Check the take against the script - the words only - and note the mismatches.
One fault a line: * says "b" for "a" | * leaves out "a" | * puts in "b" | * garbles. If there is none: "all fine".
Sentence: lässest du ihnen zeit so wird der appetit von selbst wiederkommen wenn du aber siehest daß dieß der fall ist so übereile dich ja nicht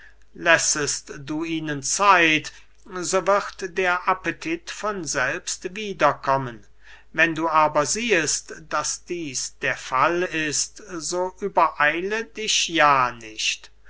all fine